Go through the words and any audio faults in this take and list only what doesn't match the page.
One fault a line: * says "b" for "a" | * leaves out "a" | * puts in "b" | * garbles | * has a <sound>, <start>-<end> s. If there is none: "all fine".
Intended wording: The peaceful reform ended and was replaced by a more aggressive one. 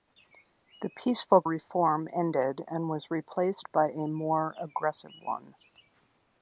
all fine